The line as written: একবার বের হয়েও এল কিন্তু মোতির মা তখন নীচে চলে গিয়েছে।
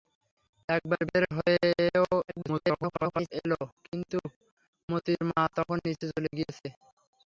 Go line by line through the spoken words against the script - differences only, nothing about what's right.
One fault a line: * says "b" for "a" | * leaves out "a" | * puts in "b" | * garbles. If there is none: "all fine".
* garbles